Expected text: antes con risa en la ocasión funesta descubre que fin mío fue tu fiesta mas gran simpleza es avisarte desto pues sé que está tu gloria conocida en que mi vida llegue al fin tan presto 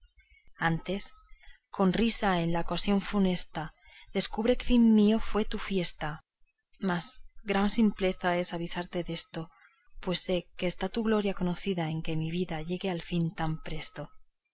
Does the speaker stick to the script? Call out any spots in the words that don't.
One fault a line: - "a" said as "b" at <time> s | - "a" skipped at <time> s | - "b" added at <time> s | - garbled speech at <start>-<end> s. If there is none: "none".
none